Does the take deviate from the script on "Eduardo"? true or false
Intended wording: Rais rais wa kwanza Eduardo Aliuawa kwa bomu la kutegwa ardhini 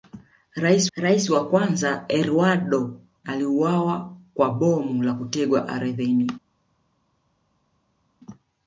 false